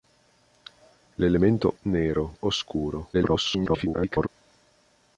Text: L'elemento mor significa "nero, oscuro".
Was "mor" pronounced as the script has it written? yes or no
no